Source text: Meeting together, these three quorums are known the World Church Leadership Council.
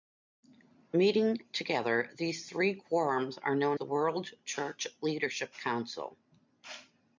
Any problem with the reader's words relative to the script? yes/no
no